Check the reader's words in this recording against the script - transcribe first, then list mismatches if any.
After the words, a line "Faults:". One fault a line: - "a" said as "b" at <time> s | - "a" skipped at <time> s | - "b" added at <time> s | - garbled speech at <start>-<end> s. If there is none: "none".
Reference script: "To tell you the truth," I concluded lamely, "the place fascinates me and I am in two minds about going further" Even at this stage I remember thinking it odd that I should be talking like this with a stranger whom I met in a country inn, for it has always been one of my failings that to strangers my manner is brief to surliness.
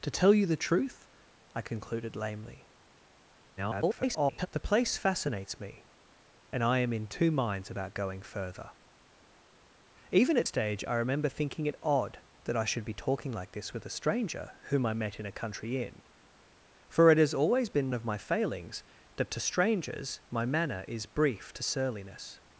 "To tell you the truth," I concluded lamely, [garbled] "the place fascinates me and I am in two minds about going further" Even at stage I remember thinking it odd that I should be talking like this with a stranger whom I met in a country inn, for it has always been of my failings that to strangers my manner is brief to surliness.
Faults:
- garbled speech at 3.6-4.5 s
- "this" skipped at 10.5 s
- "one" skipped at 17.9 s